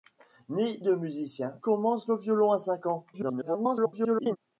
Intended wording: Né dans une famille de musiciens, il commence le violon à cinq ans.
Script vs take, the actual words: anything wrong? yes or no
yes